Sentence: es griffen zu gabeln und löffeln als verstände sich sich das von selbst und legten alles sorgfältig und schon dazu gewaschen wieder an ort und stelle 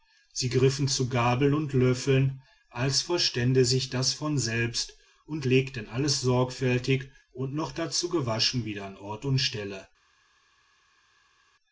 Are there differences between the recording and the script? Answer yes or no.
yes